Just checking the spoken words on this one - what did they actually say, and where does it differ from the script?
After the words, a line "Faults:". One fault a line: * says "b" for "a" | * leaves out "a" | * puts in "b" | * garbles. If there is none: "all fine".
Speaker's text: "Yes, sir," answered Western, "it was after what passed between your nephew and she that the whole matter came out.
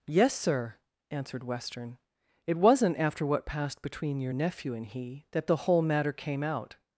"Yes, sir," answered Western, "it wasn't after what passed between your nephew and he that the whole matter came out.
Faults:
* says "wasn't" for "was"
* says "he" for "she"